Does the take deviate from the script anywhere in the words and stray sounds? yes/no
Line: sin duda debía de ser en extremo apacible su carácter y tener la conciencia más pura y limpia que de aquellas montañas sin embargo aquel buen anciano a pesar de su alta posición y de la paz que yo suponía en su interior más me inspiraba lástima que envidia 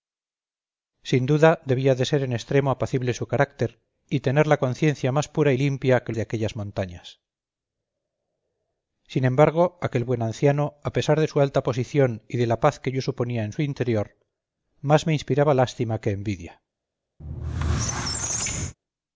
yes